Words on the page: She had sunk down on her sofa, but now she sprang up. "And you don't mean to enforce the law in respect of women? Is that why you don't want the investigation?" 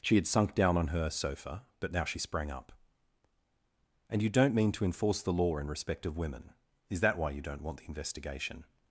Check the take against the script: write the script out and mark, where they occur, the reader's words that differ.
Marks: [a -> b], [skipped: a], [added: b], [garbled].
She had sunk down on her sofa, but now she sprang up. "And you don't mean to enforce the law in respect of women? Is that why you don't want the investigation?"